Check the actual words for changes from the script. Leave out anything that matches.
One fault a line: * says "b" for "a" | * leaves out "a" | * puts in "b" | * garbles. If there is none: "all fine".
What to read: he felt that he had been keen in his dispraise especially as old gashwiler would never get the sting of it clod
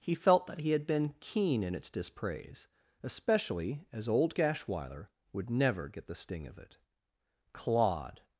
* says "its" for "his"